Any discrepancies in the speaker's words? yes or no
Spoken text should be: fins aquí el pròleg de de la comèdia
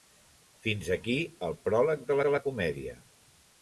no